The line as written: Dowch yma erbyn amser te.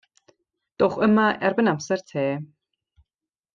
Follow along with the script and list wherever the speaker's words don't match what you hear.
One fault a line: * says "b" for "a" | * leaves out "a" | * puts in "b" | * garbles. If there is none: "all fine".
all fine